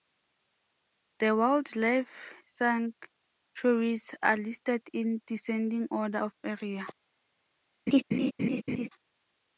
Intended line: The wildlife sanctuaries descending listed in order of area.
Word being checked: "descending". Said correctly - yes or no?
no